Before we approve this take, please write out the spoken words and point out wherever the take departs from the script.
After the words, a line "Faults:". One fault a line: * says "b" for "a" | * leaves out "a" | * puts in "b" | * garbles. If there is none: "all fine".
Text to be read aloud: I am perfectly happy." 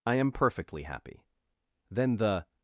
I am perfectly happy." Then the
Faults:
* puts in "Then the"